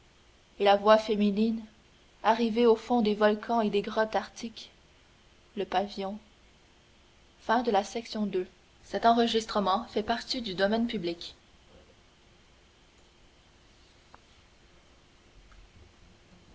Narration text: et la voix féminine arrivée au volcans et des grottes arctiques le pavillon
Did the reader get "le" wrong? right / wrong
right